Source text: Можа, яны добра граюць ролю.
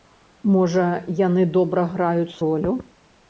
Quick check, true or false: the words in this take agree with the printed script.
true